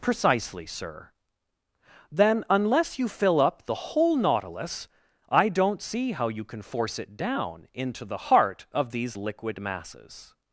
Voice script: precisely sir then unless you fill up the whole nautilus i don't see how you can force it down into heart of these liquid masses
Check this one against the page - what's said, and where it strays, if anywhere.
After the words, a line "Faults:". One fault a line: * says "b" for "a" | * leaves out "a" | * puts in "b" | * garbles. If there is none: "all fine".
precisely sir then unless you fill up the whole nautilus i don't see how you can force it down into the heart of these liquid masses
Faults:
* puts in "the"